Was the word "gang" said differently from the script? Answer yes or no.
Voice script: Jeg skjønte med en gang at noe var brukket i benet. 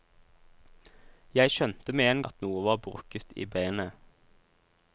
yes